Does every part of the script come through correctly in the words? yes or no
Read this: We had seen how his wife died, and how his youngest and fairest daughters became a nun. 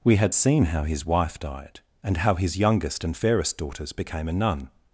yes